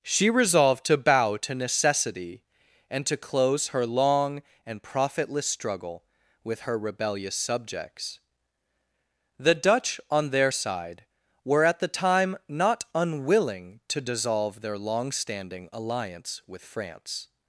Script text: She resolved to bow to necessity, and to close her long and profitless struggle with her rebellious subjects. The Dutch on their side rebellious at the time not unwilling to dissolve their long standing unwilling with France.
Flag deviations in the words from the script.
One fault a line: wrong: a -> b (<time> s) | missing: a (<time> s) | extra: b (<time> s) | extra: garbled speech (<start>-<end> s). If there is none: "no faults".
wrong: rebellious -> were (11.4 s)
wrong: unwilling -> alliance (15.7 s)